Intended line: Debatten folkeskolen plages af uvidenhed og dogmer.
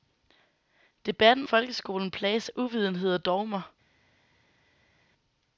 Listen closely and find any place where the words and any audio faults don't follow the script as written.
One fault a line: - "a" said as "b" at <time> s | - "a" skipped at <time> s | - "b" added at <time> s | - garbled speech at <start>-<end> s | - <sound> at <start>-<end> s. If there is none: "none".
none